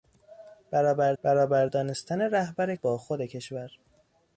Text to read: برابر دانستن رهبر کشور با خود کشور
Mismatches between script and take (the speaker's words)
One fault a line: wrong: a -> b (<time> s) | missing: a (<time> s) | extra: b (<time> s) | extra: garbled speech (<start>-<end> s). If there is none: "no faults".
extra: برابر (1.2 s)
missing: کشور (2.8 s)